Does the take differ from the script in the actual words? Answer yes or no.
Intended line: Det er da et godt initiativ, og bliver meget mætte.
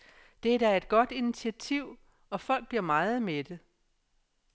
yes